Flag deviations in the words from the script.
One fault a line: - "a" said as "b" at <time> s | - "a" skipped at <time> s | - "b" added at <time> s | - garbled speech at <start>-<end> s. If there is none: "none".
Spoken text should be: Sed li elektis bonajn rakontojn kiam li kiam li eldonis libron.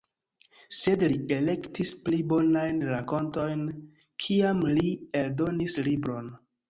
- "pli" added at 2.0 s
- "kiam li" skipped at 4.9 s